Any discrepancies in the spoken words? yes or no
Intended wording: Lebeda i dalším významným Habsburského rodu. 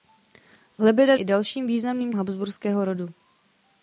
no